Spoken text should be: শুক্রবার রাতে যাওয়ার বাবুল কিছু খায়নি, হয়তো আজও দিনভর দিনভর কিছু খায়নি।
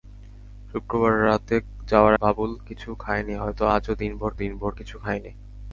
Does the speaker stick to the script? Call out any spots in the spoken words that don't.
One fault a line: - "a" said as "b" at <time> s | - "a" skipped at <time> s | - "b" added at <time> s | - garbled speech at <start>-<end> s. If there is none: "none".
none